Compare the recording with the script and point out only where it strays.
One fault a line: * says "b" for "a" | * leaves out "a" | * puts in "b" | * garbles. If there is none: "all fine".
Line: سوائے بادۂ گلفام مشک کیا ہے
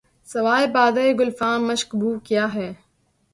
* puts in "بو"